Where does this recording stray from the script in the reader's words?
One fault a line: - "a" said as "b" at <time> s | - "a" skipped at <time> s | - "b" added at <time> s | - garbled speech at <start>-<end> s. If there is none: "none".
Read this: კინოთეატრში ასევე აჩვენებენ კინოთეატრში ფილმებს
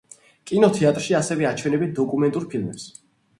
- "კინოთეატრში" said as "დოკუმენტურ" at 2.0 s